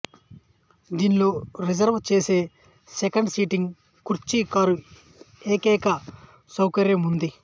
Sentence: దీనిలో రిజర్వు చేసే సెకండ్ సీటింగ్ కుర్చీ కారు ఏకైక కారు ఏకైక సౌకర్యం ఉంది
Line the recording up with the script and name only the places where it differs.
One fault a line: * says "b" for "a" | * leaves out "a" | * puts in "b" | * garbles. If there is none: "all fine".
* leaves out "కారు ఏకైక"